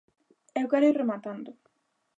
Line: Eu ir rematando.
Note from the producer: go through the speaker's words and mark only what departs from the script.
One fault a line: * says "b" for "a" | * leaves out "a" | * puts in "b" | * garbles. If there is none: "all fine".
* puts in "quero"